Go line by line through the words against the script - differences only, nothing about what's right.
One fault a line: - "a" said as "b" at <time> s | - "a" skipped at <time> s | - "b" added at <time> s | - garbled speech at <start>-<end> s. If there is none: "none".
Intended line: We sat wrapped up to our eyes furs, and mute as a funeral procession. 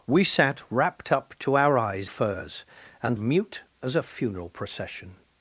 none